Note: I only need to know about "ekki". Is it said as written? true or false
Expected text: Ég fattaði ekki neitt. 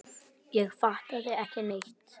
true